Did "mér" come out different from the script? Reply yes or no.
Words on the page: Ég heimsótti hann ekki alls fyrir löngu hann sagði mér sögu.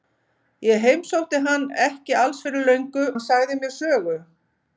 no